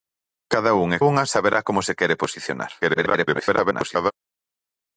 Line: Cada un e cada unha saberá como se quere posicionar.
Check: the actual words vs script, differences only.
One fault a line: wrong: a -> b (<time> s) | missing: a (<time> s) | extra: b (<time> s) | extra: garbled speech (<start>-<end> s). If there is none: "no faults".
missing: cada (1.0 s)
extra: garbled speech (2.8-4.1 s)